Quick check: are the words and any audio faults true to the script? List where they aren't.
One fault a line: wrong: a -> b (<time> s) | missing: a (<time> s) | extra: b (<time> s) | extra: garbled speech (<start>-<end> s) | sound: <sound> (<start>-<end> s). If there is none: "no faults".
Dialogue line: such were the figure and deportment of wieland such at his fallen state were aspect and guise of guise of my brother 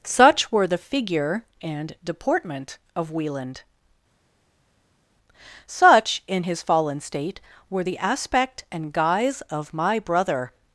wrong: at -> in (6.3 s)
extra: the (7.8 s)
missing: guise of (9.7 s)